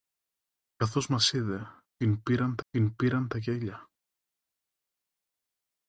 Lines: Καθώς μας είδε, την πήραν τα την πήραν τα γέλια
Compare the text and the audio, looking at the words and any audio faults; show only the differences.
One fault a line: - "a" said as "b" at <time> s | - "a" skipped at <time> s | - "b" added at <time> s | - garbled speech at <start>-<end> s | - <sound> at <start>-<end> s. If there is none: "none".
none